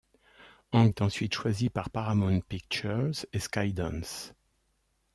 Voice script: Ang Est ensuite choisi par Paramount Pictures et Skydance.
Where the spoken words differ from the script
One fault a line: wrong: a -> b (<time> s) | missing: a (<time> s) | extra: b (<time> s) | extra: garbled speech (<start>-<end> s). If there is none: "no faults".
no faults